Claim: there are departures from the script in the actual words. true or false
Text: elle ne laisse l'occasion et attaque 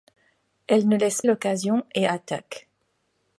false